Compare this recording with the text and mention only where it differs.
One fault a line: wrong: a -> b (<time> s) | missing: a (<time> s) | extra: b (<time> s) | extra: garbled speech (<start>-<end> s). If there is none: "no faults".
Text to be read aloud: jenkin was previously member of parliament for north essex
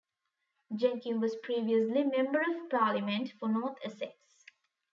no faults